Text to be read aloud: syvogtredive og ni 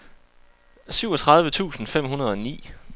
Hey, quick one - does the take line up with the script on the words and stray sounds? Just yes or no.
no